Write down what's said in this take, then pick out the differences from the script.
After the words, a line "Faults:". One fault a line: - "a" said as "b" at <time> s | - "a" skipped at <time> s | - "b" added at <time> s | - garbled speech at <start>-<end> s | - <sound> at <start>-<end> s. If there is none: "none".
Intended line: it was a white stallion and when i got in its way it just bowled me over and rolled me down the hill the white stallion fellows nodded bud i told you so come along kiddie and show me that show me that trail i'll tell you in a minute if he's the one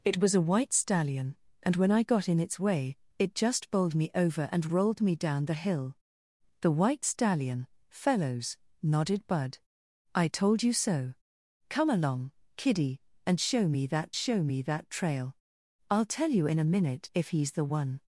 it was a white stallion and when i got in its way it just bowled me over and rolled me down the hill the white stallion fellows nodded bud i told you so come along kiddie and show me that show me that trail i'll tell you in a minute if he's the one
Faults:
none